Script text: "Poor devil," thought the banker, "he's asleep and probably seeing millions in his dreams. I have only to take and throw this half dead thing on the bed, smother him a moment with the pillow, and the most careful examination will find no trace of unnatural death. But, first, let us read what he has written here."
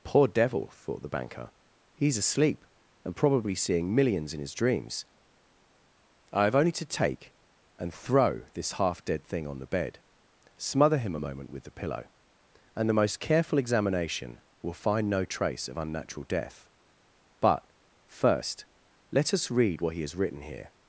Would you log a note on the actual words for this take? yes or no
no